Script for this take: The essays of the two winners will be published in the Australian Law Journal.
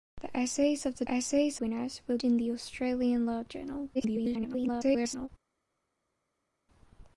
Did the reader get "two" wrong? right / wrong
wrong